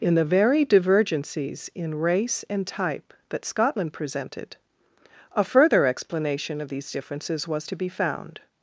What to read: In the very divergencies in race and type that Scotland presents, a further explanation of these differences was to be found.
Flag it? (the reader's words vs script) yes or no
yes